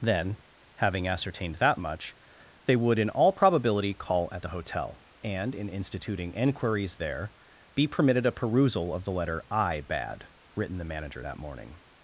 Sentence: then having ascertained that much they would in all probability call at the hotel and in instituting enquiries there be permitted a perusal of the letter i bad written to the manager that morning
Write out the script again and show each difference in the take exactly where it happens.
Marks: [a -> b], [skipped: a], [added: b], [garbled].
then having ascertained that much they would in all probability call at the hotel and in instituting enquiries there be permitted a perusal of the letter i bad written [skipped: to] the manager that morning